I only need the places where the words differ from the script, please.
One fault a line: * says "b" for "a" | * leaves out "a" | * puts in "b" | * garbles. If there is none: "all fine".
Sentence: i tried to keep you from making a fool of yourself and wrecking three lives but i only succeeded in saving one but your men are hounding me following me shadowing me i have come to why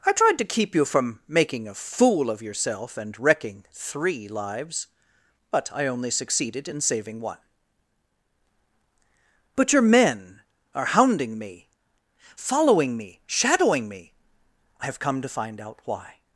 * puts in "find out"